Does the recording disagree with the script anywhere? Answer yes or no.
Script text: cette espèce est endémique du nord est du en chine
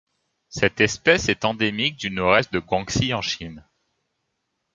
yes